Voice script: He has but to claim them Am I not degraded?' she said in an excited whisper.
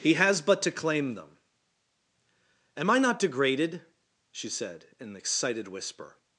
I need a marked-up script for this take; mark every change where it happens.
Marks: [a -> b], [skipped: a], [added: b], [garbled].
He has but to claim them Am I not degraded?' she said in an excited whisper.